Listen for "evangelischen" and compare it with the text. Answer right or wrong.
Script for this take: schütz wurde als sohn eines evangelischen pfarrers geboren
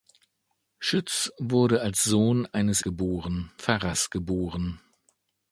wrong